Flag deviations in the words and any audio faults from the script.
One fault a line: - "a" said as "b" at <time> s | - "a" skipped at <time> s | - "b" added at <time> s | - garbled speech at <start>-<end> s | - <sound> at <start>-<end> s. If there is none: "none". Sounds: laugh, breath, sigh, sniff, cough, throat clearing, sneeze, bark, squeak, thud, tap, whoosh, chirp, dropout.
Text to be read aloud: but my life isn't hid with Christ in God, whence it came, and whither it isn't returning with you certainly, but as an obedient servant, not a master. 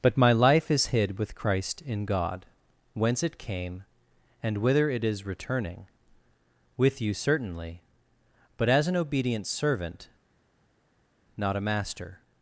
- "isn't" said as "is" at 0.7 s
- "isn't" said as "is" at 5.0 s